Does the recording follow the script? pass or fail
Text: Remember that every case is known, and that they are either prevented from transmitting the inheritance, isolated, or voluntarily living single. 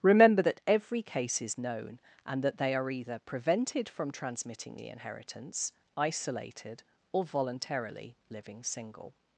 pass